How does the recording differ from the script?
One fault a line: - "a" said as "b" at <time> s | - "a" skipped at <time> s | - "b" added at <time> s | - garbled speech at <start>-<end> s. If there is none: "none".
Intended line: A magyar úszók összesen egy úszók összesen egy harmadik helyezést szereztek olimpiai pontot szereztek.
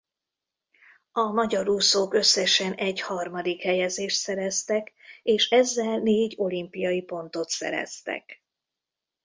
- "úszók összesen egy harmadik helyezést szereztek" said as "harmadik helyezést szereztek és ezzel négy" at 3.0 s